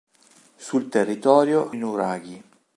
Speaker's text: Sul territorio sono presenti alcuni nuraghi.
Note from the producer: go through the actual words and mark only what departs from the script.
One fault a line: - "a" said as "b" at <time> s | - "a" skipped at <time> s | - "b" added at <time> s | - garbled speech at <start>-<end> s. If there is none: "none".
- "sono presenti alcuni" skipped at 1.8 s